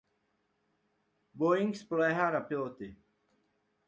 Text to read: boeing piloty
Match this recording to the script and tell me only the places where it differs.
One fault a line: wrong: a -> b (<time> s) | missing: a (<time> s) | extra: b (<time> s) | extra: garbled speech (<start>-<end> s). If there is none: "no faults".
extra: spoléhá na (1.7 s)